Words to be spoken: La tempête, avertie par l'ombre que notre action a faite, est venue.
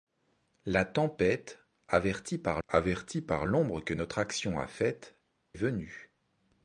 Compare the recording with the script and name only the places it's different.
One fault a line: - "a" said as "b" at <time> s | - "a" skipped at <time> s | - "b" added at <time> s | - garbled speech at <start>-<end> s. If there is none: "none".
- "avertie par" added at 2.7 s
- "est" skipped at 5.1 s